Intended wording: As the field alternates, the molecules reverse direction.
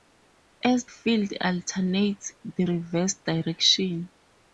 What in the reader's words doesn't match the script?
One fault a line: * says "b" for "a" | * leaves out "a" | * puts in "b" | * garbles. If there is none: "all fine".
* leaves out "the"
* leaves out "molecules"